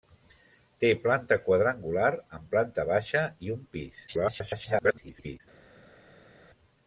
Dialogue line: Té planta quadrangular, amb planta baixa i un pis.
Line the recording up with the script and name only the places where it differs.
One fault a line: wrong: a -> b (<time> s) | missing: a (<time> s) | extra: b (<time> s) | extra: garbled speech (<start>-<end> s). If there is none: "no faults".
extra: garbled speech (4.1-5.4 s)